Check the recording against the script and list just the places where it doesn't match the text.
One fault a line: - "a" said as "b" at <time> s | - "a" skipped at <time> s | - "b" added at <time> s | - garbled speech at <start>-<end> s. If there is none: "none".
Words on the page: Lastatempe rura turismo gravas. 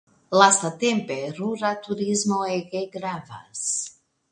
- "ege" added at 2.6 s